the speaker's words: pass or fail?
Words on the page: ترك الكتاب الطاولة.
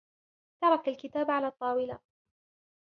fail